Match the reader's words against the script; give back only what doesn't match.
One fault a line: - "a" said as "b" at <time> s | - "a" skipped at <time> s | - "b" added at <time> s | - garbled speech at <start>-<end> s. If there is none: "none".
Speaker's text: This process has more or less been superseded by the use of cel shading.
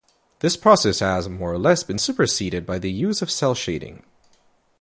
none